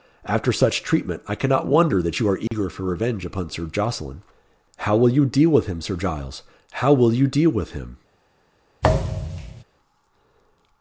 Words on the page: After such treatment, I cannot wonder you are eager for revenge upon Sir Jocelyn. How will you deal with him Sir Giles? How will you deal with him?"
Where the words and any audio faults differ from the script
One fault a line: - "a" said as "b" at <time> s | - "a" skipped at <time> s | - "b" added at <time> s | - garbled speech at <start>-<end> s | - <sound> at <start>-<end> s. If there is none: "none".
- "that" added at 2.0 s
- dropout at 2.5-2.5 s
- thud at 8.8-9.6 s